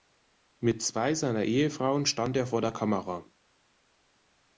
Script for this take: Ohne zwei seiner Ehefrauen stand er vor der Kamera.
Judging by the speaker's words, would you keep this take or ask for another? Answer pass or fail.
fail